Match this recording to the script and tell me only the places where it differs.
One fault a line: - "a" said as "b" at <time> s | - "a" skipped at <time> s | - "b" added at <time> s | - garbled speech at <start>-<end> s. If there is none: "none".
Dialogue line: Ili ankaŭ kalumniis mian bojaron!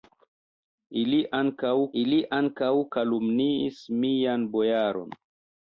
- "ili ankaŭ" added at 2.0 s